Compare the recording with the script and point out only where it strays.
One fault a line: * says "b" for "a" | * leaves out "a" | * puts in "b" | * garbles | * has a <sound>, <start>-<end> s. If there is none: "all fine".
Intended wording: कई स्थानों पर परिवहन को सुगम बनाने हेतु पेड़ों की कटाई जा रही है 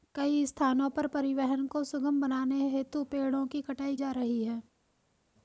all fine